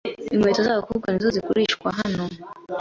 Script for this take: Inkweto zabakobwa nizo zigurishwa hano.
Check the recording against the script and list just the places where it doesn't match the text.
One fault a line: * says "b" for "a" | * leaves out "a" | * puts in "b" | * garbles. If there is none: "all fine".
all fine